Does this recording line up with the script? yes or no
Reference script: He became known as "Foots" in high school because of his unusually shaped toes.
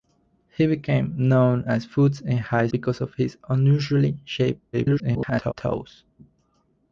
no